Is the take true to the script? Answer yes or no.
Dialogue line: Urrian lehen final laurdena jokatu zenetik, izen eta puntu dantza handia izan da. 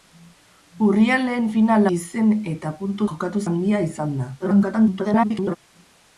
no